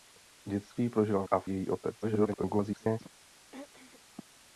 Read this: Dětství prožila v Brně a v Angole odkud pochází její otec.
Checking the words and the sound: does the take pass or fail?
fail